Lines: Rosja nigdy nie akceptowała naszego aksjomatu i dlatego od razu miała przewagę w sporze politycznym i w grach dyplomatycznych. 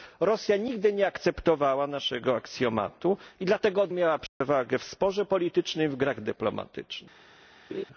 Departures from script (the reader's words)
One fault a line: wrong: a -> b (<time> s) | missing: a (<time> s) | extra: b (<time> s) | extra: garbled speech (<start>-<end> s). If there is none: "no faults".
missing: razu (3.9 s)